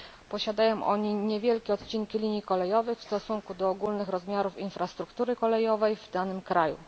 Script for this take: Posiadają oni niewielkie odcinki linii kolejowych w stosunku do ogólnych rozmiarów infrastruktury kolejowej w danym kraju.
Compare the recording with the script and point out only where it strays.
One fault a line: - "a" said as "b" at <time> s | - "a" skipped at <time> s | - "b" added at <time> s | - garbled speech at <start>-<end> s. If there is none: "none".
none